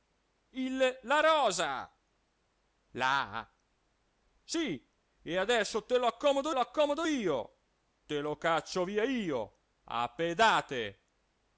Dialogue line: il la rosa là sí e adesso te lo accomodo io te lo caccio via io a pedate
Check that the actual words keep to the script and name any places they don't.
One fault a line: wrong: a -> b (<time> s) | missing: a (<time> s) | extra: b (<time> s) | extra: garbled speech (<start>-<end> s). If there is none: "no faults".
extra: lo accomodo (6.5 s)